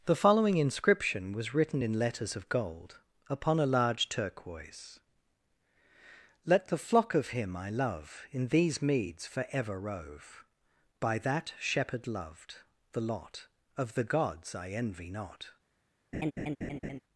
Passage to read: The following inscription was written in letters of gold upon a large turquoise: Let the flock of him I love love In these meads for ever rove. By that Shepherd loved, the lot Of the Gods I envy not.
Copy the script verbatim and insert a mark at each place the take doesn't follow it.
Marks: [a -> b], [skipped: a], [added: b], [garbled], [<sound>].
The following inscription was written in letters of gold upon a large turquoise: Let the flock of him I love [skipped: love] In these meads for ever rove. By that Shepherd loved, the lot Of the Gods I envy not. [laugh]